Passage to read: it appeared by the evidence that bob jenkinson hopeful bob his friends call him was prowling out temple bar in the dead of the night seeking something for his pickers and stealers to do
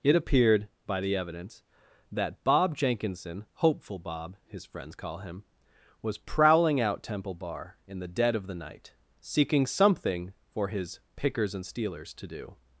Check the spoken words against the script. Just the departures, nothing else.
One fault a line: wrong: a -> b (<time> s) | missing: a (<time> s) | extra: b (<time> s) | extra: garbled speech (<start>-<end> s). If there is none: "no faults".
no faults